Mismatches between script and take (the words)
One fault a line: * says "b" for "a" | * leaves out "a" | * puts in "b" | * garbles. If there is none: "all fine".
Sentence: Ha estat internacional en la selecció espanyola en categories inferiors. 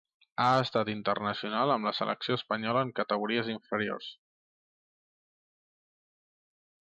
* says "amb" for "en"